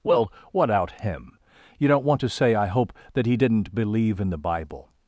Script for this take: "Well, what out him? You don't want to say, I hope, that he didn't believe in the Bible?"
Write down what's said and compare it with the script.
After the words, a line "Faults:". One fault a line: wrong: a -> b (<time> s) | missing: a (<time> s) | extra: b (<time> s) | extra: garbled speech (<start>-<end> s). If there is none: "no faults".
"Well, what out him? You don't want to say, I hope, that he didn't believe in the Bible?"
Faults:
no faults